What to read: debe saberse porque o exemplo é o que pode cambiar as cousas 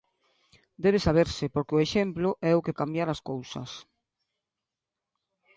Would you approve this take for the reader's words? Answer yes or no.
no